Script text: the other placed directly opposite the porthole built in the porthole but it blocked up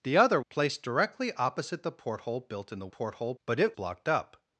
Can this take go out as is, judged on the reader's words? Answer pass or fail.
pass